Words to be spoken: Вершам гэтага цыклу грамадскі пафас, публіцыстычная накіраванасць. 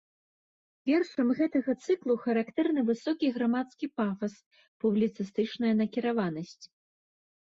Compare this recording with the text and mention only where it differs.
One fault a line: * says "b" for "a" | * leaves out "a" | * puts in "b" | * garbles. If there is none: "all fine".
* puts in "характэрны высокі"